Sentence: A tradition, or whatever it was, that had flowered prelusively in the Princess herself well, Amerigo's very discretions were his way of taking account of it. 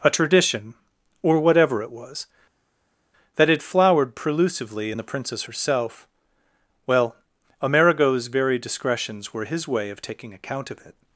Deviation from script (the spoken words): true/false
false